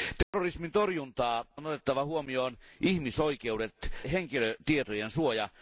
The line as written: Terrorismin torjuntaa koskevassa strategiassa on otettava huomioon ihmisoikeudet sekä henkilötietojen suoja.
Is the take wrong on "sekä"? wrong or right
wrong